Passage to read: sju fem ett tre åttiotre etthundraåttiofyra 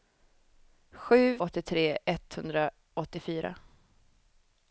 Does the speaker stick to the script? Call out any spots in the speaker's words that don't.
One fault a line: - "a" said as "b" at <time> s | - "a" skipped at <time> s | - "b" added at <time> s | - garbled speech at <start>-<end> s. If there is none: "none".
- "fem ett tre" skipped at 1.4 s